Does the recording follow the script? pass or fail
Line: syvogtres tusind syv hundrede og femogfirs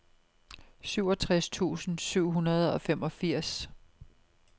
pass